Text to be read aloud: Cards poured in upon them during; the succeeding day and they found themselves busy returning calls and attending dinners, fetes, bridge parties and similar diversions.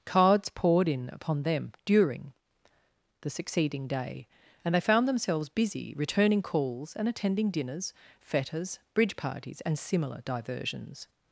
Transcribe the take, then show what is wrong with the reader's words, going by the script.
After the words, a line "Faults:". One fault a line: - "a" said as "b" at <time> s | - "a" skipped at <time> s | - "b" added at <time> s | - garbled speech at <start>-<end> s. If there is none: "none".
Cards poured in upon them during; the succeeding day and they found themselves busy returning calls and attending dinners, fetes, bridge parties and similar diversions.
Faults:
none